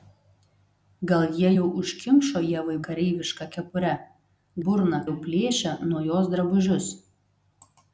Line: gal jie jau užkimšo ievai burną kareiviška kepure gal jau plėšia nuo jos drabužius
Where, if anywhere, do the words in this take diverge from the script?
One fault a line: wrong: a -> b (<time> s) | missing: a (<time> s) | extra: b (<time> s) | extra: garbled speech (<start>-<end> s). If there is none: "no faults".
missing: burną (2.8 s)
wrong: gal -> burną (4.7 s)